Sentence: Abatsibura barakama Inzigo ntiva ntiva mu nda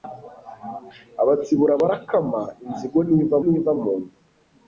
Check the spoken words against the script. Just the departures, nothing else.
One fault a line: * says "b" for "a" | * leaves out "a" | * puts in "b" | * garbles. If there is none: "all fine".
all fine